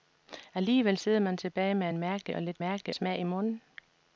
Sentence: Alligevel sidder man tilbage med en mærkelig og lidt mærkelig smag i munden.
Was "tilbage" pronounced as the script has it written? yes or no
yes